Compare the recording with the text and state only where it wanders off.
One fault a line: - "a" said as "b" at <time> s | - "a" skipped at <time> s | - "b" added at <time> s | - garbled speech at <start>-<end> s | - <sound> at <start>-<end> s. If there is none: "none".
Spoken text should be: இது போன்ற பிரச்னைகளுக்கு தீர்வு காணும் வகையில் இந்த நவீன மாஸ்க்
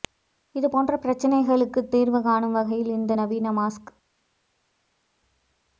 none